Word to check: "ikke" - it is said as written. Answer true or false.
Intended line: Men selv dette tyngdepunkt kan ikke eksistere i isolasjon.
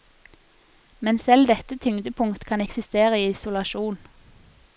false